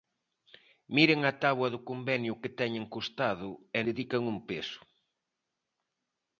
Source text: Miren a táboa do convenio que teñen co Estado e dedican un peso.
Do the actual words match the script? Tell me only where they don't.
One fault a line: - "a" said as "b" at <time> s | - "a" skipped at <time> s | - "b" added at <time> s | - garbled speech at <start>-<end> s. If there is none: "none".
none